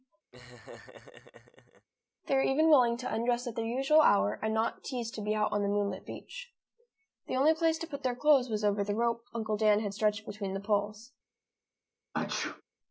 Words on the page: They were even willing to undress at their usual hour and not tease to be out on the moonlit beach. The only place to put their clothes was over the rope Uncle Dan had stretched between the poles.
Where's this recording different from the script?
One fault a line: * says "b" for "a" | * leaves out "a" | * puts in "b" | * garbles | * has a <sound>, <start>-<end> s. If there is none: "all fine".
* has a laugh, 0.3-1.9 s
* has a sneeze, 12.1-12.6 s